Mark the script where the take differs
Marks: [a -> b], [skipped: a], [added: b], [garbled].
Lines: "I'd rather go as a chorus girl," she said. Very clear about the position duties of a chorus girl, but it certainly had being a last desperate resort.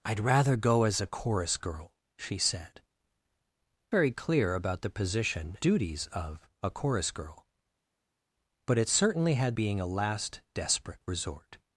"I'd rather go as a chorus girl," she said. Very clear about the position duties of a chorus girl, but it certainly had being a last desperate resort.